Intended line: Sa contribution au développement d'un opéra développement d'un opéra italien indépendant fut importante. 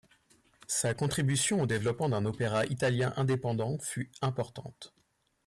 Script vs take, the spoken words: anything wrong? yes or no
yes